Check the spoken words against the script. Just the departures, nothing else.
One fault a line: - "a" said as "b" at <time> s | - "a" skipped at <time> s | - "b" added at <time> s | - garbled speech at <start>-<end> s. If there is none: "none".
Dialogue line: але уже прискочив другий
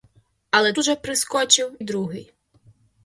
none